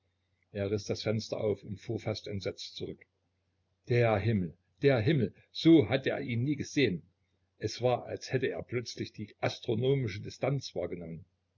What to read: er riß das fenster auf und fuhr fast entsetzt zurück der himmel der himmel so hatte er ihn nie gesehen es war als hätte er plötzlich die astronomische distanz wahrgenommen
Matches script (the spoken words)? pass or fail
pass